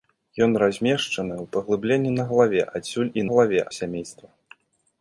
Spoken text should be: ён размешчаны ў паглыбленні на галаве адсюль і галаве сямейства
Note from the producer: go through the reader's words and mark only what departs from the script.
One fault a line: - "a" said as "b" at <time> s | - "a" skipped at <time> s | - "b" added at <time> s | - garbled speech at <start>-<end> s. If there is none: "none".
none